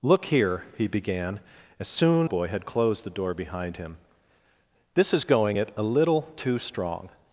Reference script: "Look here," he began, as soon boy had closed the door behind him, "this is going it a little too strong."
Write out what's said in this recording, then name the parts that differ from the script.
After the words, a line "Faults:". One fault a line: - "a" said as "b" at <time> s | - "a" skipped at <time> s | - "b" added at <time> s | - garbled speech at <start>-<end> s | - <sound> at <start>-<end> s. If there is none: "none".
"Look here," he began, as soon boy had closed the door behind him, "this is going it a little too strong."
Faults:
none